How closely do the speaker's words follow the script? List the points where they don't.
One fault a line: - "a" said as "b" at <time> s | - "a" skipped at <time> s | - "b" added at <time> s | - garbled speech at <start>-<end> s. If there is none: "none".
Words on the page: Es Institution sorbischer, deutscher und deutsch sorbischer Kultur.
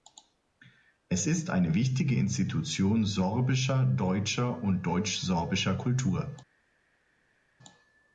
- "ist eine wichtige" added at 1.3 s